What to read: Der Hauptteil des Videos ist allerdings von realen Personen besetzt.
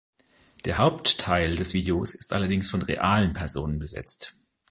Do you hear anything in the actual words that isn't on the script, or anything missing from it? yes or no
no